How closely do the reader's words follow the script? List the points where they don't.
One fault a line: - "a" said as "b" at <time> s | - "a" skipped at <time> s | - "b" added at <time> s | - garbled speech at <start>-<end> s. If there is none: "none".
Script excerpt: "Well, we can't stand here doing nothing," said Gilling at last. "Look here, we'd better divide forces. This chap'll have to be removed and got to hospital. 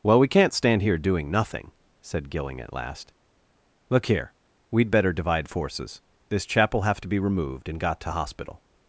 none